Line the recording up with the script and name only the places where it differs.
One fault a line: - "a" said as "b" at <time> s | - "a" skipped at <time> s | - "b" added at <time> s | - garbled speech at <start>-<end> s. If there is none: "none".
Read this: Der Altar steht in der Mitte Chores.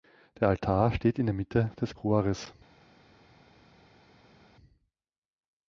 - "des" added at 1.8 s